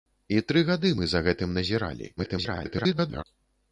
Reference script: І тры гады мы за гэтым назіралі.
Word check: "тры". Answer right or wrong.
right